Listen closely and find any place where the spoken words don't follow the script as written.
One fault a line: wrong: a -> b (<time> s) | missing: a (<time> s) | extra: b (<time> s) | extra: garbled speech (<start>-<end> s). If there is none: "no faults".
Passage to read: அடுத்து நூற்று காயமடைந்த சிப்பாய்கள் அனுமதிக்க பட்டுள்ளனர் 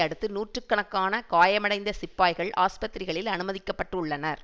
extra: கணக்கான (0.7 s)
extra: ஆஸ்பத்திரிகளில் (2.6 s)